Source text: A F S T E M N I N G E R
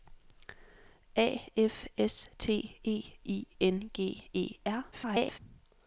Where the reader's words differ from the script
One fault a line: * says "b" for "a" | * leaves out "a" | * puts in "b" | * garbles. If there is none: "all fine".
* leaves out "M N"
* garbles